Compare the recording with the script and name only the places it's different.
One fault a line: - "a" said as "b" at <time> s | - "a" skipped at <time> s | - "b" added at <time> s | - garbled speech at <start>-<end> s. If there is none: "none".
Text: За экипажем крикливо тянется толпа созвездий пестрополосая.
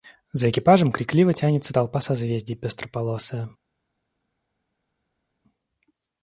none